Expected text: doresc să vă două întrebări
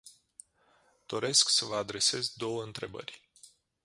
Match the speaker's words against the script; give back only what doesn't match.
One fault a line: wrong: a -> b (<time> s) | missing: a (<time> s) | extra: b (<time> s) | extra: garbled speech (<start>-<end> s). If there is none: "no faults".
extra: adresez (1.7 s)